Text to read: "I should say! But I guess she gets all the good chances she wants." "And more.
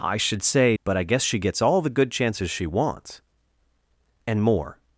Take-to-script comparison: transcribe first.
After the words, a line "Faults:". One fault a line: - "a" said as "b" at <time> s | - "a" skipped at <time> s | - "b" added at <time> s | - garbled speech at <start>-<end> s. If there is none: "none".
"I should say! But I guess she gets all the good chances she wants." "And more.
Faults:
none